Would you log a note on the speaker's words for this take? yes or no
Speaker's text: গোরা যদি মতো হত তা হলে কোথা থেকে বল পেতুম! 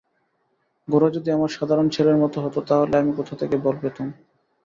yes